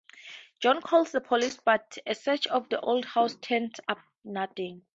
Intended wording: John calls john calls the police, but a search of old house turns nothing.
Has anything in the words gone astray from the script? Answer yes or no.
yes